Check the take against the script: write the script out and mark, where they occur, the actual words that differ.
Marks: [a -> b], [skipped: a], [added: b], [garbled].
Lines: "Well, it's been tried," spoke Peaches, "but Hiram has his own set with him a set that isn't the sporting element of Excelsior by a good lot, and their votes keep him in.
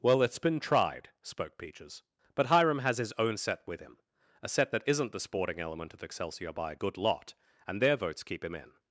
"Well, it's been tried," spoke Peaches, "but Hiram has his own set with him a set that isn't the sporting element of Excelsior by a good lot, and their votes keep him in.